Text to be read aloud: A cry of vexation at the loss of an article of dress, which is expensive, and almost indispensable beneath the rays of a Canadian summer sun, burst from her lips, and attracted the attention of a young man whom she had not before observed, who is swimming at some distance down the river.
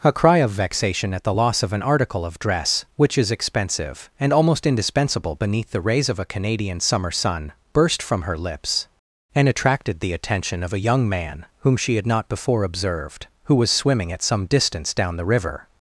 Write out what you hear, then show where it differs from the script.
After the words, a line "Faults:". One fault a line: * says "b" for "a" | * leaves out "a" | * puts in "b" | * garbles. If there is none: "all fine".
A cry of vexation at the loss of an article of dress, which is expensive, and almost indispensable beneath the rays of a Canadian summer sun, burst from her lips, and attracted the attention of a young man whom she had not before observed, who was swimming at some distance down the river.
Faults:
* says "was" for "is"